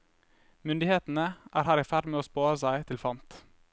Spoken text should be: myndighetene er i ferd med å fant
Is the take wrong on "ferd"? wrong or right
right